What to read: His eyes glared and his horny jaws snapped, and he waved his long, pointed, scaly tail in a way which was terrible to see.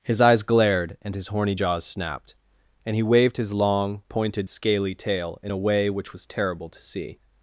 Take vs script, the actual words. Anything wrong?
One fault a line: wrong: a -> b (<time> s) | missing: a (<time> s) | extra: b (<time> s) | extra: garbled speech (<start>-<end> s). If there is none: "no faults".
no faults